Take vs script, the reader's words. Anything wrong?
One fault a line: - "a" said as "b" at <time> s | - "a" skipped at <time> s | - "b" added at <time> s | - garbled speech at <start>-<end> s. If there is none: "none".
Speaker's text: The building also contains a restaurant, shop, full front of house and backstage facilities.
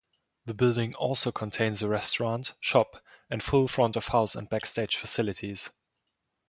- "and" added at 3.3 s